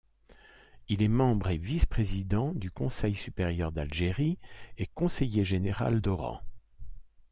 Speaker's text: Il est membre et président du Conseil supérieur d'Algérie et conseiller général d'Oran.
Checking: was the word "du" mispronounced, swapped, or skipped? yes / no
no